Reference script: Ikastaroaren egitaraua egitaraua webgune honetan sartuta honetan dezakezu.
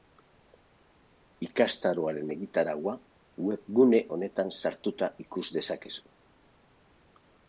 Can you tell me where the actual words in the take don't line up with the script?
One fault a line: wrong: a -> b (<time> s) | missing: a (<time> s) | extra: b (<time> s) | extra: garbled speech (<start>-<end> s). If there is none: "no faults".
missing: egitaraua (2.9 s)
wrong: honetan -> ikus (5.2 s)